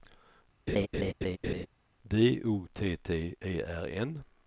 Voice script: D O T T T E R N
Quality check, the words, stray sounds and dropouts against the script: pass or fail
fail